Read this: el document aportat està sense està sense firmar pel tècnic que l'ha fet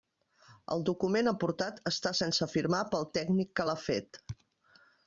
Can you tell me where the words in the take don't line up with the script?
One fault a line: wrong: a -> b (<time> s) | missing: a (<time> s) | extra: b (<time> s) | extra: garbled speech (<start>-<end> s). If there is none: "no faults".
missing: està sense (2.5 s)